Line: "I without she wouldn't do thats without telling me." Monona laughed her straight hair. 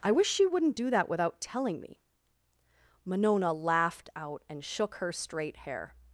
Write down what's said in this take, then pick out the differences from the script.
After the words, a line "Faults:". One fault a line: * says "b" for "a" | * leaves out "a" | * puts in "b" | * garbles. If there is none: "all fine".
"I wish she wouldn't do that without telling me." Monona laughed out and shook her straight hair.
Faults:
* says "wish" for "without"
* says "that" for "thats"
* puts in "out and shook"